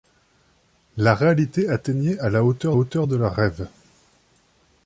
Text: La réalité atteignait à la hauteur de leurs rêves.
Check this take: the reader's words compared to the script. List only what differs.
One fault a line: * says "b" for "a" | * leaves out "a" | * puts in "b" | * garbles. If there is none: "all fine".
* puts in "hauteur"